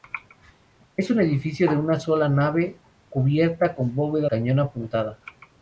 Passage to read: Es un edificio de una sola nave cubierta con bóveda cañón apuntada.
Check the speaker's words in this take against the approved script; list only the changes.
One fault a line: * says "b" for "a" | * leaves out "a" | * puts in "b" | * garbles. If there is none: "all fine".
all fine